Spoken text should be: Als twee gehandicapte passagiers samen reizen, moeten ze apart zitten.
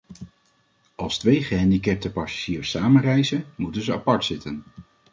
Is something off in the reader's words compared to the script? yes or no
no